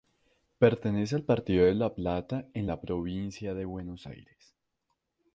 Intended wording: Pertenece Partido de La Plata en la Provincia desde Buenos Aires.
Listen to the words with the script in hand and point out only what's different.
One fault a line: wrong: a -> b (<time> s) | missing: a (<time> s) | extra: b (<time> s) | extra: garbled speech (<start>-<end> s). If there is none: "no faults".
extra: al (1.1 s)
wrong: desde -> de (3.5 s)